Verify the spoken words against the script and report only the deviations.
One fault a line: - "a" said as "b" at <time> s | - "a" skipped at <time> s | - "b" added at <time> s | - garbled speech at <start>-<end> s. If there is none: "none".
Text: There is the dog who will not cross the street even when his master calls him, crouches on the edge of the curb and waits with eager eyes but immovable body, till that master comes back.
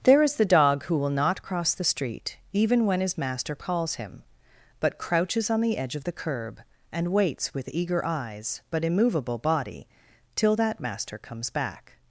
- "but" added at 4.8 s